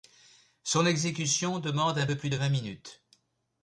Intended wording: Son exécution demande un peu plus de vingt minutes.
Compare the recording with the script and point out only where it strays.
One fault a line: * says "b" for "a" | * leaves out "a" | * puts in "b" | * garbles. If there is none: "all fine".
all fine